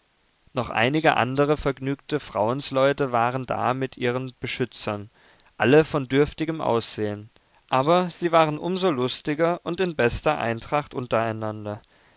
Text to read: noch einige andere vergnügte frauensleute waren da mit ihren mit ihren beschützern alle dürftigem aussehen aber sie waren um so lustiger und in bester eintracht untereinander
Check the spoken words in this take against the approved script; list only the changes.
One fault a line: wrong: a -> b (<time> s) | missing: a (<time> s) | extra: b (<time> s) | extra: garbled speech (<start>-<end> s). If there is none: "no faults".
missing: mit ihren (4.3 s)
extra: von (5.8 s)